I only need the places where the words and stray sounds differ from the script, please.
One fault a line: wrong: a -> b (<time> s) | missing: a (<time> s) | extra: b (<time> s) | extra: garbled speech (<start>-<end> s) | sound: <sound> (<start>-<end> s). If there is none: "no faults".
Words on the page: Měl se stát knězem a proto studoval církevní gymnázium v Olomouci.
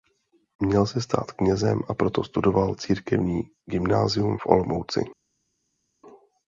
no faults